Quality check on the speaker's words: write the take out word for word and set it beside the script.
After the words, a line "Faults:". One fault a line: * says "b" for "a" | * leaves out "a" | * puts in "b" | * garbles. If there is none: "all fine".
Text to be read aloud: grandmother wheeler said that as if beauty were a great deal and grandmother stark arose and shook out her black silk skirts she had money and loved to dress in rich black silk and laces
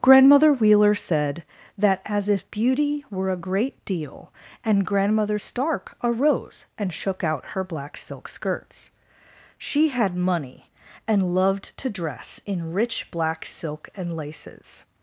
grandmother wheeler said that as if beauty were a great deal and grandmother stark arose and shook out her black silk skirts she had money and loved to dress in rich black silk and laces
Faults:
all fine